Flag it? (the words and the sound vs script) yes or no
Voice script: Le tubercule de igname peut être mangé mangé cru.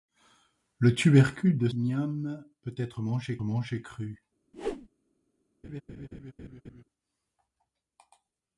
yes